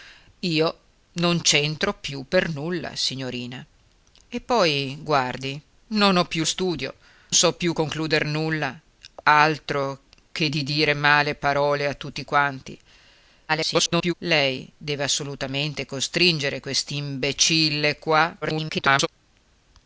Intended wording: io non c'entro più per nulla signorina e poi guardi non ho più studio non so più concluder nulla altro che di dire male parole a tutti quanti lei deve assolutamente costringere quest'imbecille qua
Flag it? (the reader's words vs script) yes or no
yes